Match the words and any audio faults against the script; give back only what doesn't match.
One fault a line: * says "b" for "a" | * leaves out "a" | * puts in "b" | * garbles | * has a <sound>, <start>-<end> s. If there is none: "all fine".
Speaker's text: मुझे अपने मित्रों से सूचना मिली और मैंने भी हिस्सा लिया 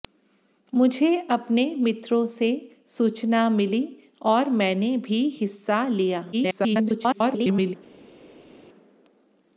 * garbles